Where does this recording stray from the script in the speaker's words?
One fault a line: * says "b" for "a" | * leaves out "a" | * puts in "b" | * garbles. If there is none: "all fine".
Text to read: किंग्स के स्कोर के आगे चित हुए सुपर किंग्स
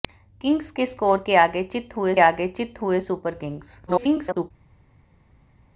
* puts in "आगे चित हुए"
* garbles